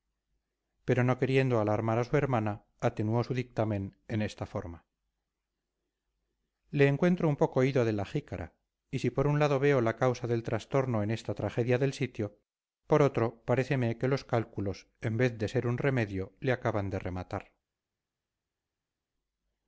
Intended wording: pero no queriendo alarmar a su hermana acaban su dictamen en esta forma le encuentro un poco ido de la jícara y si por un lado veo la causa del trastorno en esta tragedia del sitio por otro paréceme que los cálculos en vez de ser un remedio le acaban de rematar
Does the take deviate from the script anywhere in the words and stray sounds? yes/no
yes